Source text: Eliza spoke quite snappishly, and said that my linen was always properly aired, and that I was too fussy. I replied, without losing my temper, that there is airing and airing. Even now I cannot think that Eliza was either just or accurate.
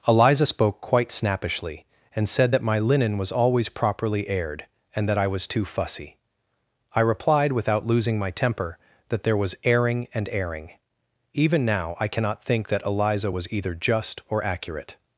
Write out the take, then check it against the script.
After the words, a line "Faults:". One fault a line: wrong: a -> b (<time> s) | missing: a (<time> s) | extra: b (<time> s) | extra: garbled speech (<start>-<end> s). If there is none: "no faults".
Eliza spoke quite snappishly, and said that my linen was always properly aired, and that I was too fussy. I replied, without losing my temper, that there was airing and airing. Even now I cannot think that Eliza was either just or accurate.
Faults:
wrong: is -> was (9.4 s)